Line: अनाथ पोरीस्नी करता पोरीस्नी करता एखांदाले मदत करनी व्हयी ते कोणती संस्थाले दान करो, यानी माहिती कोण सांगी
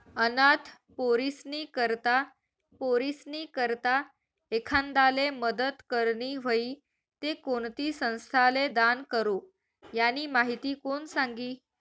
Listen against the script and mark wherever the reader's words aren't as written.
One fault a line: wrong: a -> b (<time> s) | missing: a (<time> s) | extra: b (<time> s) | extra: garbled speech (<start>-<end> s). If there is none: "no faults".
no faults